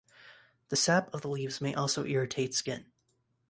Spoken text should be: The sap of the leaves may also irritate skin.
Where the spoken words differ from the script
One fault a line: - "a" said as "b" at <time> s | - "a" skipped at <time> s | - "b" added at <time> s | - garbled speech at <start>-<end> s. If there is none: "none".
none